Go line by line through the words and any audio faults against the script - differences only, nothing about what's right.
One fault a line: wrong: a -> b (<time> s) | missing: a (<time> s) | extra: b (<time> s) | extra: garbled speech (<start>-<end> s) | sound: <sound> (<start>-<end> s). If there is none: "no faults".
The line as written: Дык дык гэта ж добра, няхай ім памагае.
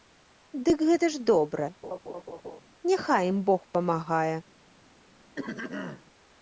missing: дык (0.8 s)
sound: laugh (1.8-2.6 s)
extra: бог (3.5 s)
sound: throat clearing (5.4-6.0 s)